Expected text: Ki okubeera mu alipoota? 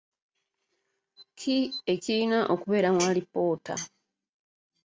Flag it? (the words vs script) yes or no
yes